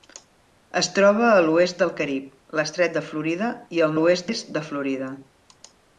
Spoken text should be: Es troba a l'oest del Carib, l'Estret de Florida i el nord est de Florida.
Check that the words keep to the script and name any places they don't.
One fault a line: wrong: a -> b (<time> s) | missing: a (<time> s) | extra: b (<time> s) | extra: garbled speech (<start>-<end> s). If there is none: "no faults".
wrong: nord -> l'oest (4.0 s)